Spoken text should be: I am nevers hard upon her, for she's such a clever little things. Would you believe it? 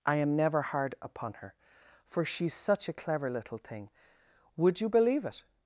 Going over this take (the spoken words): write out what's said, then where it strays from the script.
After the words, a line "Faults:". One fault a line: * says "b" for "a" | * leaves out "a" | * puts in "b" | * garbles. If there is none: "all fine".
I am never hard upon her, for she's such a clever little thing. Would you believe it?
Faults:
* says "never" for "nevers"
* says "thing" for "things"